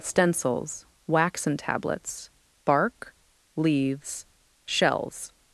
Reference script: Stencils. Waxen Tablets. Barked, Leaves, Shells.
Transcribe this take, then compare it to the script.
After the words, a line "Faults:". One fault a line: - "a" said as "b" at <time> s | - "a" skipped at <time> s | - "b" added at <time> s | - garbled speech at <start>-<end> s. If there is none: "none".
Stencils. Waxen Tablets. Bark, Leaves, Shells.
Faults:
- "Barked" said as "Bark" at 2.6 s